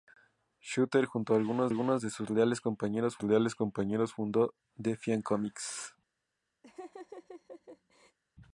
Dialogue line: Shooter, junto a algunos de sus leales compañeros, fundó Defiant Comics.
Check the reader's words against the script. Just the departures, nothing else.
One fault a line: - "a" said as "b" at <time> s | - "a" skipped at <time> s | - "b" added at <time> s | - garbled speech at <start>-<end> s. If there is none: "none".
- "algunos" added at 1.7 s
- "leales compañeros" added at 3.2 s